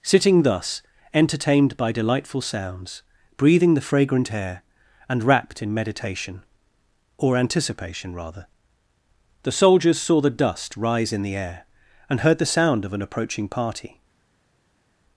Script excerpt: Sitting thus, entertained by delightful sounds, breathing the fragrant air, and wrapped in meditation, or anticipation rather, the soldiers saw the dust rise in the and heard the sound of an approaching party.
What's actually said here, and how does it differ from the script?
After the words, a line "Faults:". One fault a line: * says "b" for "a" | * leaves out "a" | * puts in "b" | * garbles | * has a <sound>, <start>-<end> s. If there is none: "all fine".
Sitting thus, entertained by delightful sounds, breathing the fragrant air, and wrapped in meditation, or anticipation rather, the soldiers saw the dust rise in the air, and heard the sound of an approaching party.
Faults:
* puts in "air"